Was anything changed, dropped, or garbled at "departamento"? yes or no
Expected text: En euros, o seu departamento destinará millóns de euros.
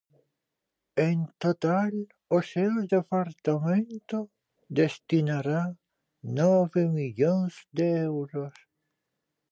no